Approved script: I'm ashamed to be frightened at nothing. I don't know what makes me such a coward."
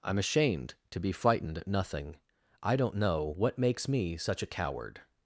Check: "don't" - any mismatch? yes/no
no